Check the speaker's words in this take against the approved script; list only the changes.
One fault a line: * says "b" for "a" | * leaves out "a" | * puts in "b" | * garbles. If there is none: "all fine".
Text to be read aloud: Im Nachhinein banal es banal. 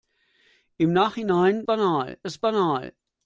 all fine